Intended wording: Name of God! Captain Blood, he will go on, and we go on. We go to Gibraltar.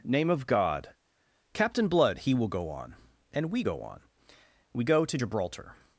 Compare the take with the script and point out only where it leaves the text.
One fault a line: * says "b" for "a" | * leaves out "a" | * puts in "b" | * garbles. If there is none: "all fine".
all fine